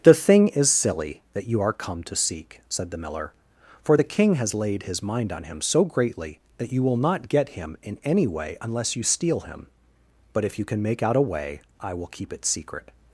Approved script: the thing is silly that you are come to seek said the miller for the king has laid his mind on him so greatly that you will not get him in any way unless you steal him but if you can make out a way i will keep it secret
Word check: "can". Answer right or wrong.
right